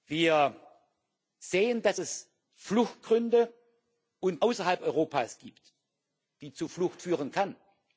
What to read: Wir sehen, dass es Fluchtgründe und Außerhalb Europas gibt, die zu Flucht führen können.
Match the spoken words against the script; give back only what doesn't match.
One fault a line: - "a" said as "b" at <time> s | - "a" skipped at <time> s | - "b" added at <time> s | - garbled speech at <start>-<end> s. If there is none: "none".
none